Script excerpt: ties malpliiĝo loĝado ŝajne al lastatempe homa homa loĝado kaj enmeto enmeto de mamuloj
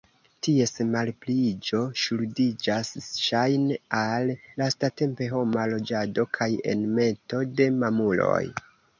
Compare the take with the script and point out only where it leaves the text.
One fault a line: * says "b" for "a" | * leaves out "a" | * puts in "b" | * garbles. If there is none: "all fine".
* says "ŝuldiĝas" for "loĝado"
* leaves out "homa"
* leaves out "enmeto"